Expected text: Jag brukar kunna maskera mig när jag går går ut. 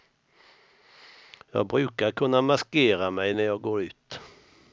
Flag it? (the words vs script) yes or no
yes